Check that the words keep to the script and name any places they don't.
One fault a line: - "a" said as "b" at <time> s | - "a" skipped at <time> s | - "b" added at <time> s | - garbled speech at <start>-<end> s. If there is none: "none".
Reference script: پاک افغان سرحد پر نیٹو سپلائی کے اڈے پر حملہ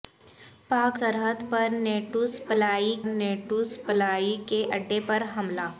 - "افغان" skipped at 1.0 s
- "نیٹو سپلائی" added at 3.1 s